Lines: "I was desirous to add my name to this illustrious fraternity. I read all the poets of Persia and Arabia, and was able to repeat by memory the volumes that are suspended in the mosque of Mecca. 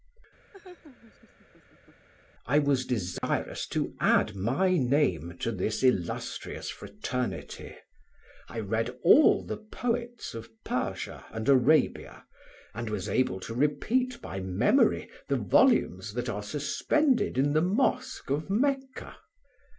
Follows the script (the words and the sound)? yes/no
no